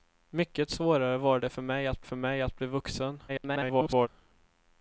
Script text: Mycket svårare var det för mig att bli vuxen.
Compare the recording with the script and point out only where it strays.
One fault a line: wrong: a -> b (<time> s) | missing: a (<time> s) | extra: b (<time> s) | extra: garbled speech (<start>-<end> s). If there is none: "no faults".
extra: för mig att (2.0 s)
extra: garbled speech (3.3-4.1 s)